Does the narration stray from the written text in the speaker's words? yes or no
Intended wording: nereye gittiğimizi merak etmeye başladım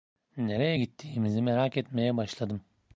no